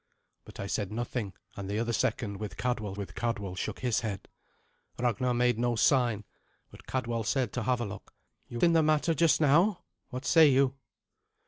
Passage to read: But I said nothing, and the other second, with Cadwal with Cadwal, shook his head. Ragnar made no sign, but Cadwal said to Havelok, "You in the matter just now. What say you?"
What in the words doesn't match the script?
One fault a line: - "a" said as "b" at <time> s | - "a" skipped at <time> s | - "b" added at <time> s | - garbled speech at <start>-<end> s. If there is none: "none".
none